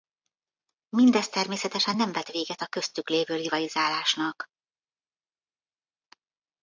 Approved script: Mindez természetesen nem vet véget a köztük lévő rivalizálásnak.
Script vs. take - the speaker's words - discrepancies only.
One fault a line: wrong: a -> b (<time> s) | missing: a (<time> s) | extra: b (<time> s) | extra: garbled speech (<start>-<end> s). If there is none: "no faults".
no faults